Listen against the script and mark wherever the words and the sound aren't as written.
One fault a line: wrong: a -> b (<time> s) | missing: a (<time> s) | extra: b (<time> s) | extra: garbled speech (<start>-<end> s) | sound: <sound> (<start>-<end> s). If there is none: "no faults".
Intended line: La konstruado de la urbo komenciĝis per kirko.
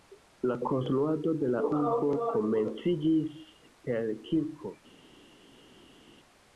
no faults